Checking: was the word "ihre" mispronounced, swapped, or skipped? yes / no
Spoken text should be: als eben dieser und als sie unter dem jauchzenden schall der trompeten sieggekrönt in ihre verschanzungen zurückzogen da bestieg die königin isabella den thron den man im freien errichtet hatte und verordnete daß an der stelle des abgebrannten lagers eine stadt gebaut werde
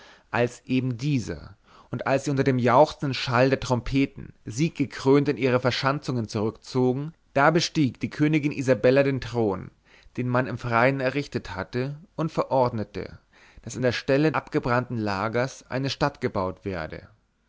no